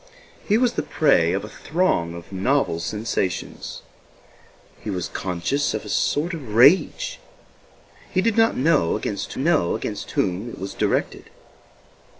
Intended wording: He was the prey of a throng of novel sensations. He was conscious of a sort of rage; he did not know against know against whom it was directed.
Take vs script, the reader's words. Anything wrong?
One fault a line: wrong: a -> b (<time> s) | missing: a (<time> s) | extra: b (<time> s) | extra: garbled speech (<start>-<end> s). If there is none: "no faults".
no faults